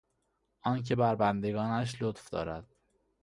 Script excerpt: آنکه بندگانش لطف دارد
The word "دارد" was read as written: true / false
true